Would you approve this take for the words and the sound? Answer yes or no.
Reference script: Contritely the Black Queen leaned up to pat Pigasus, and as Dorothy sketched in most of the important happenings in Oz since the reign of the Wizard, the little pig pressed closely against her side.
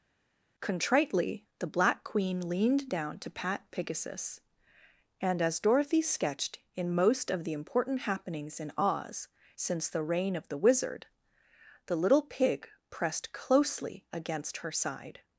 no